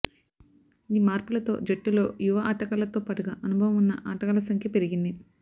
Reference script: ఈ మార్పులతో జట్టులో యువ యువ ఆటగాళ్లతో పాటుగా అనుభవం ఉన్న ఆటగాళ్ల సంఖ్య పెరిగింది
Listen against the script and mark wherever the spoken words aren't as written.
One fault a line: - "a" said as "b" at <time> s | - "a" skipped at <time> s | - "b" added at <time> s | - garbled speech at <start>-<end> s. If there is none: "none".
- "యువ" skipped at 2.4 s